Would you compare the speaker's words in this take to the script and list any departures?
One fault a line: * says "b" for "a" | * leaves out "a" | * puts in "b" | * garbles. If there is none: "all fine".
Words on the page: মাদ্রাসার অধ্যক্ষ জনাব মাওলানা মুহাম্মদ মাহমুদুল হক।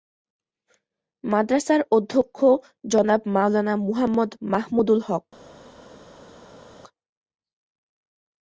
all fine